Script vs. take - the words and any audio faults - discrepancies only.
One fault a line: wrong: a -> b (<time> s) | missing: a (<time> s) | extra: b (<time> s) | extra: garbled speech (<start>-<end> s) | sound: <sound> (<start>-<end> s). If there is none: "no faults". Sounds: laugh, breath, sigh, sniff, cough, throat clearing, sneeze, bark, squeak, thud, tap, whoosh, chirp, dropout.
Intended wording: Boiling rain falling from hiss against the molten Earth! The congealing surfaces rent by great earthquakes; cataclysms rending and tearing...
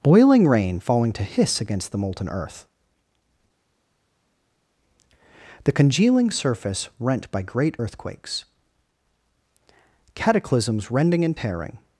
wrong: from -> to (1.1 s)
wrong: surfaces -> surface (6.3 s)